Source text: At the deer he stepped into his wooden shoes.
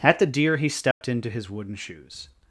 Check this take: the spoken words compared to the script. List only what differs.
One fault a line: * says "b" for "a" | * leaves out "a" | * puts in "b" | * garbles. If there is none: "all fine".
all fine